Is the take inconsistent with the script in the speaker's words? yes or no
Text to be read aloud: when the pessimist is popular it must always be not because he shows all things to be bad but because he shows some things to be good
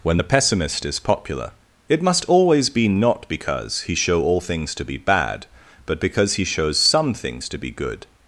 yes